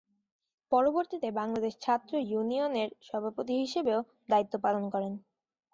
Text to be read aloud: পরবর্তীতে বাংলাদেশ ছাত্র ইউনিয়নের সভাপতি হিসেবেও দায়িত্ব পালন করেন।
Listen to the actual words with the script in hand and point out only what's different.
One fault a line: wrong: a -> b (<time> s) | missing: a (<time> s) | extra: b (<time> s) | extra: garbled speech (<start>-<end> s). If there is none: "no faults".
no faults